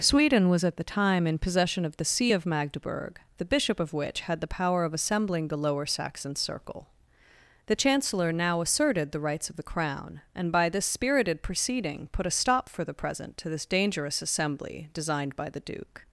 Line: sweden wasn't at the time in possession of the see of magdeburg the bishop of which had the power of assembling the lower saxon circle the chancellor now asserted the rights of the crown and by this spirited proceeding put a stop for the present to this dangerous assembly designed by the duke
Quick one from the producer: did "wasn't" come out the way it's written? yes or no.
no